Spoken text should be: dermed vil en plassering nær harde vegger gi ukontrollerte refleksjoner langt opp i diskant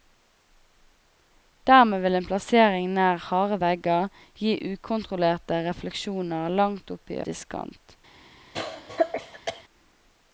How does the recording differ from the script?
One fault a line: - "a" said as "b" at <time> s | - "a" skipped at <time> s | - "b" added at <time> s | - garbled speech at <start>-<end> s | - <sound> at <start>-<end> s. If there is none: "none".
- cough at 8.5-9.6 s